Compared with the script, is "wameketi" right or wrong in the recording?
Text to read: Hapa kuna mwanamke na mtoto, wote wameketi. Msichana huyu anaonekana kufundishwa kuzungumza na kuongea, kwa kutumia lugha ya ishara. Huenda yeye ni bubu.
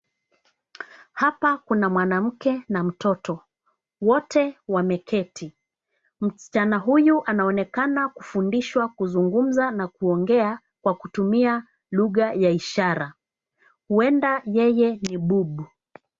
right